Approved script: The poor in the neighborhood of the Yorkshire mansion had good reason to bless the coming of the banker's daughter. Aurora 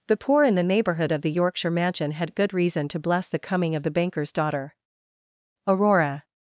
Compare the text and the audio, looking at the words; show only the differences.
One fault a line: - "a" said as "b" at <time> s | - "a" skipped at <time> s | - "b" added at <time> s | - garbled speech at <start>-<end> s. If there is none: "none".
none